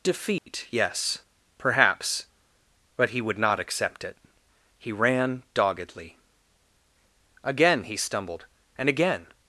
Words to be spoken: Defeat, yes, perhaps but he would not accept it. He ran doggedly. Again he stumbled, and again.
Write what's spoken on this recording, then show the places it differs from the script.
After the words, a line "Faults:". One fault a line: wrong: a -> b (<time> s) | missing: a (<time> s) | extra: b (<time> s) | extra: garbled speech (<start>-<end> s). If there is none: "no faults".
Defeat, yes, perhaps but he would not accept it. He ran doggedly. Again he stumbled, and again.
Faults:
no faults